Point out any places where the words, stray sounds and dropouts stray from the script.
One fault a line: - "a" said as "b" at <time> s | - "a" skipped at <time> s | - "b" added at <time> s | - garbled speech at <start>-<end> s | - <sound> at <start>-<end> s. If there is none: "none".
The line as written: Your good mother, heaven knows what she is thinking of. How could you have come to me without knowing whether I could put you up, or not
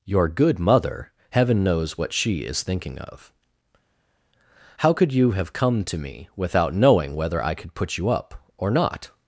none